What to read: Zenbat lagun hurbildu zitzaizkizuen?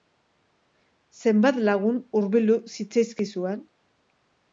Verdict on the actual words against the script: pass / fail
pass